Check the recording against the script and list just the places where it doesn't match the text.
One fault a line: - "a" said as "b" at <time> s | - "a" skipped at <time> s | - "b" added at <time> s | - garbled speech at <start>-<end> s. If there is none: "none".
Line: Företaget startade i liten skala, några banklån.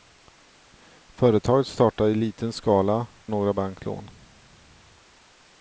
none